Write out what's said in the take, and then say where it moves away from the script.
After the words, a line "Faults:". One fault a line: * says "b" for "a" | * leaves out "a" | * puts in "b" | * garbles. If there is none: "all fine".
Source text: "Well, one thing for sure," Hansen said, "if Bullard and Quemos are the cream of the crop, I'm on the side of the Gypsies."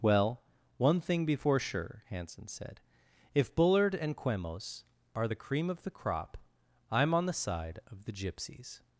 "Well, one thing before sure," Hansen said, "if Bullard and Quemos are the cream of the crop, I'm on the side of the Gypsies."
Faults:
* says "before" for "for"